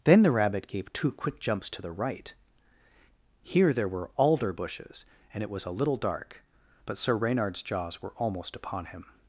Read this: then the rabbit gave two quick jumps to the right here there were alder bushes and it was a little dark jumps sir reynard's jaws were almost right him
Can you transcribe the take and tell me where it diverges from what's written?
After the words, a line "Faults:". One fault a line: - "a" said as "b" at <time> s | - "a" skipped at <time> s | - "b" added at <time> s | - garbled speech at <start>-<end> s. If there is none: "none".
then the rabbit gave two quick jumps to the right here there were alder bushes and it was a little dark but sir reynard's jaws were almost upon him
Faults:
- "jumps" said as "but" at 6.8 s
- "right" said as "upon" at 8.6 s